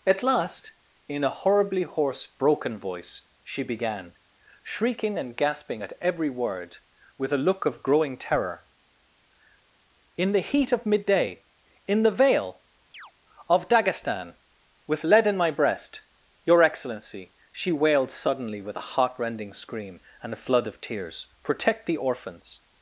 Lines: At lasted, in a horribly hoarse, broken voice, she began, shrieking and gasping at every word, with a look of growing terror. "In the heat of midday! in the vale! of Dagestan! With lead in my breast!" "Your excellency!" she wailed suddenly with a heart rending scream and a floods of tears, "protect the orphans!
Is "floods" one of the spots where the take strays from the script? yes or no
yes